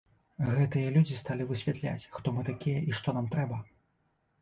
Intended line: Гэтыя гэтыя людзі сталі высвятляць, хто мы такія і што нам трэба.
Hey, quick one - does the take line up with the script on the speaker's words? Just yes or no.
no